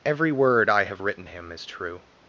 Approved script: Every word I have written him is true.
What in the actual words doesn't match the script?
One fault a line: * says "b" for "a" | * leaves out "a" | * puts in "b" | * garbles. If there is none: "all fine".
all fine